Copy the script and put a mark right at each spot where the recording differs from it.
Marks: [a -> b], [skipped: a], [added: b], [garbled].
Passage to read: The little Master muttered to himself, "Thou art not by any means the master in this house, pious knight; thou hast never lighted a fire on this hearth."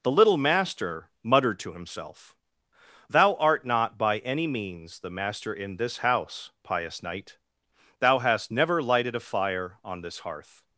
The little Master muttered to himself, "Thou art not by any means the master in this house, pious knight; thou hast never lighted a fire on this hearth."